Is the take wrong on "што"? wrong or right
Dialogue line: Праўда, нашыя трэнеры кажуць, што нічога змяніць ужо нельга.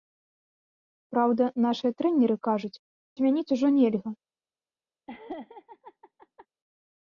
wrong